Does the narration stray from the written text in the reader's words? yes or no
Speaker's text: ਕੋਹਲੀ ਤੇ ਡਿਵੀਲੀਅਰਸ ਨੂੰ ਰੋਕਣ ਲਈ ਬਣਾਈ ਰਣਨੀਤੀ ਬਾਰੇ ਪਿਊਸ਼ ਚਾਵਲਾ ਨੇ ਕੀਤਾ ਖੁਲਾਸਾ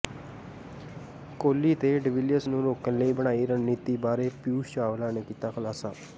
no